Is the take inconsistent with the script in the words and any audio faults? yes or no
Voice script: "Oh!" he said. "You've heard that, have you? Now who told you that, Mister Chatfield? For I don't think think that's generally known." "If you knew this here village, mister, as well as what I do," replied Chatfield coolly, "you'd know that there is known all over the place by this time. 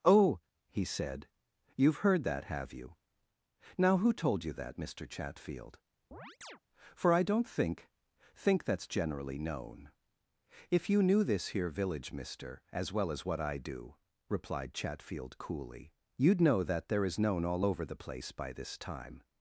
yes